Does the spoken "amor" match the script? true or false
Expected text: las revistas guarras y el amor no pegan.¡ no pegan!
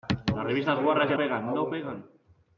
false